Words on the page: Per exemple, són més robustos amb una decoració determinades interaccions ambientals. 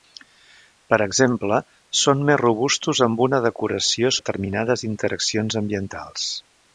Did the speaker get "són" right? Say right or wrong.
right